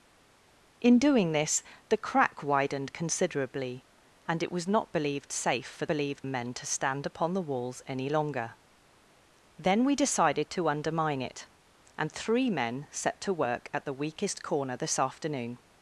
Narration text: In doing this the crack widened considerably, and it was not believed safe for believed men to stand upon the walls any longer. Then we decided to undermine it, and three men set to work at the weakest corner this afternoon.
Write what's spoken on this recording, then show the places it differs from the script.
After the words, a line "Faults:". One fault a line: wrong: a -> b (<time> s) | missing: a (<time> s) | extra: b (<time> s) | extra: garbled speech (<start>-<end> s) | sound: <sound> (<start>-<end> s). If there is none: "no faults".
In doing this the crack widened considerably, and it was not believed safe for believed men to stand upon the walls any longer. Then we decided to undermine it, and three men set to work at the weakest corner this afternoon.
Faults:
no faults